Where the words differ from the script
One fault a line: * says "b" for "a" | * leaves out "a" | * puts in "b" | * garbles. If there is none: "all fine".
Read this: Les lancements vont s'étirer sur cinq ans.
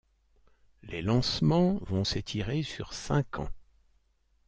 all fine